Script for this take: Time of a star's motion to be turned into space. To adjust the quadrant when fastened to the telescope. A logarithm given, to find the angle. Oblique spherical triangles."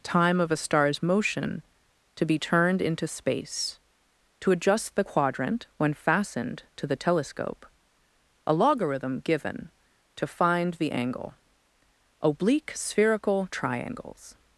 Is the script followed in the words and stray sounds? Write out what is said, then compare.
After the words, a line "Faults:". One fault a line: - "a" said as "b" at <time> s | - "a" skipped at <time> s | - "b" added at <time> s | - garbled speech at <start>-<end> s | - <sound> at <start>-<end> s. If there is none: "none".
Time of a star's motion to be turned into space. To adjust the quadrant when fastened to the telescope. A logarithm given, to find the angle. Oblique spherical triangles."
Faults:
none